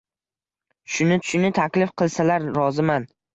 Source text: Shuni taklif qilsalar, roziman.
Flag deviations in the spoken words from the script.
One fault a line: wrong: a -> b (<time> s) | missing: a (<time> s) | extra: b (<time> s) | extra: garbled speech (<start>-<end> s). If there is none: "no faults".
extra: shuni (1.3 s)